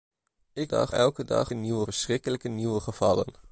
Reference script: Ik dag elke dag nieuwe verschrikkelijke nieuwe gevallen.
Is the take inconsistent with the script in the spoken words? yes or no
no